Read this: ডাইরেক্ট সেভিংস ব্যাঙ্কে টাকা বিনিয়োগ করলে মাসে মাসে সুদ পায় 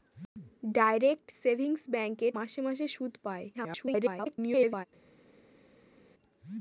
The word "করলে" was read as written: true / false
false